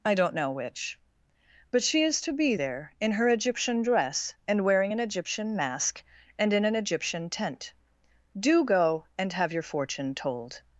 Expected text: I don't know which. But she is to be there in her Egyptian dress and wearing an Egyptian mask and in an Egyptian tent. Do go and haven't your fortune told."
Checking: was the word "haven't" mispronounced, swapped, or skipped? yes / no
yes